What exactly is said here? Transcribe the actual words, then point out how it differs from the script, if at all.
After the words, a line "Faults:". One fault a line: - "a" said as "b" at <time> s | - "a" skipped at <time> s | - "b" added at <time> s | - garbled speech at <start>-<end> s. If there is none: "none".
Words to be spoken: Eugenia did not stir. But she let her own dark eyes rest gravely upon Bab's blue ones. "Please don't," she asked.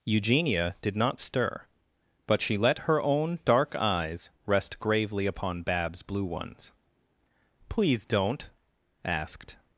Eugenia did not stir. But she let her own dark eyes rest gravely upon Bab's blue ones. "Please don't," asked.
Faults:
- "she" skipped at 8.5 s